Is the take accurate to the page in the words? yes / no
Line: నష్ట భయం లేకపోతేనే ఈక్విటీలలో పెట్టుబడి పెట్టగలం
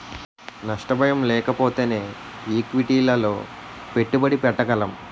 yes